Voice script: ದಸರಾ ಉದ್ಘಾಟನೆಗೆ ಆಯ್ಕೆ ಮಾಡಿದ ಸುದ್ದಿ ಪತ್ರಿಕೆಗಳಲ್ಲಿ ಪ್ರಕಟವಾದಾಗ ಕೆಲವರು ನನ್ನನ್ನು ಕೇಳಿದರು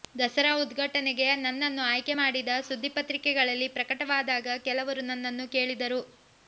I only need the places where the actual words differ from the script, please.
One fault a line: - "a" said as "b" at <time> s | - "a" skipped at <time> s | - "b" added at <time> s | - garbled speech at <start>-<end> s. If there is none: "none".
- "ನನ್ನನ್ನು" added at 1.4 s